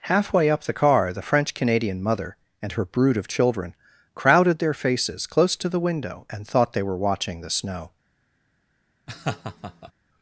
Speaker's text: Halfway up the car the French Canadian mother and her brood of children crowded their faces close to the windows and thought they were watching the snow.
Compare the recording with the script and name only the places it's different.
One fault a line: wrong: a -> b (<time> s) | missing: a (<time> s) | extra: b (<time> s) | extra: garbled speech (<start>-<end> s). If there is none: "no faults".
wrong: windows -> window (5.8 s)